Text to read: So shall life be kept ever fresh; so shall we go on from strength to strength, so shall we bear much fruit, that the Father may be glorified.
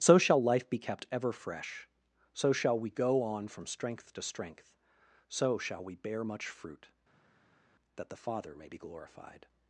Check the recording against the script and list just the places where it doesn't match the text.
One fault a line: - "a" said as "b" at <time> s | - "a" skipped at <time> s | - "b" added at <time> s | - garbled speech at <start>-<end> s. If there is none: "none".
none